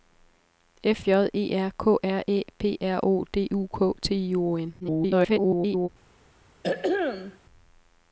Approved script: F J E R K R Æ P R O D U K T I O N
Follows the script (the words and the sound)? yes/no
no